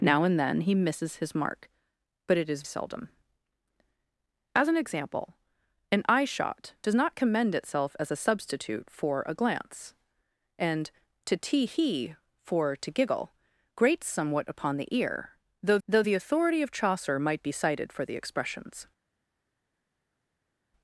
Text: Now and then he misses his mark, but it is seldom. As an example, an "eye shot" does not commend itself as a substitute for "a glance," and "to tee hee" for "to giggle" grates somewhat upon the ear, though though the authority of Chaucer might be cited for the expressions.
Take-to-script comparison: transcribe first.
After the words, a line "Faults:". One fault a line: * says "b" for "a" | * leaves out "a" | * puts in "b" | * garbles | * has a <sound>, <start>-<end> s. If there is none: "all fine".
Now and then he misses his mark, but it is seldom. As an example, an "eye shot" does not commend itself as a substitute for "a glance," and "to tee hee" for "to giggle" grates somewhat upon the ear, though though the authority of Chaucer might be cited for the expressions.
Faults:
all fine